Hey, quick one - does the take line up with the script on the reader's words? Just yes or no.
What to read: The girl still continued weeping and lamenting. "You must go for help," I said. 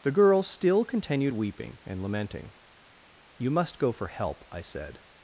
yes